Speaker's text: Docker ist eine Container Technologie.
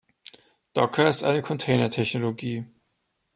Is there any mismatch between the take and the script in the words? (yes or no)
no